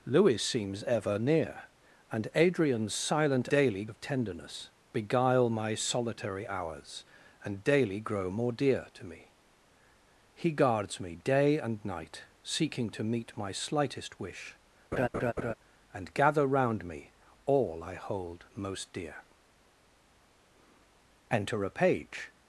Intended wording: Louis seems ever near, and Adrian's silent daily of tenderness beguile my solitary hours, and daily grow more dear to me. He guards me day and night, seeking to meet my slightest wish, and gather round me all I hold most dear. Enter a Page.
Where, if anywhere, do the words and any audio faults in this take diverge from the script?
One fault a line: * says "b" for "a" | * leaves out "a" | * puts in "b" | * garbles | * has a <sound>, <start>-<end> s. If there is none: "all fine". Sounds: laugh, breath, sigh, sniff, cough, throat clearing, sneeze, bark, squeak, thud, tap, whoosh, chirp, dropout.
* has a laugh, 14.9-15.5 s